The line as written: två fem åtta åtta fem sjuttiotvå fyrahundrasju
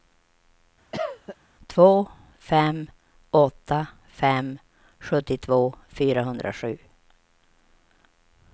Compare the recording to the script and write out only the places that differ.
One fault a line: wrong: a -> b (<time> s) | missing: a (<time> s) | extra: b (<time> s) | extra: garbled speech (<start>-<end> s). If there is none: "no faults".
missing: åtta (3.9 s)